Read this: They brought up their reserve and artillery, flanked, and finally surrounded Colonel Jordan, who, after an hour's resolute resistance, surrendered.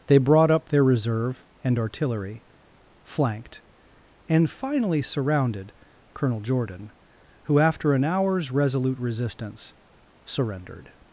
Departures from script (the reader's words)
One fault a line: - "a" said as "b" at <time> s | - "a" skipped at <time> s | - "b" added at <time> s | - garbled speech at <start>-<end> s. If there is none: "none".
none